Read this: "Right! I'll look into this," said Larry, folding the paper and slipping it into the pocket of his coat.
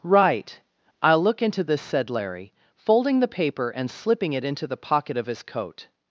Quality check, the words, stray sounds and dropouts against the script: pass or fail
pass